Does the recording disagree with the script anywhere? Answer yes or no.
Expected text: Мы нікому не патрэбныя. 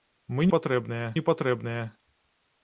yes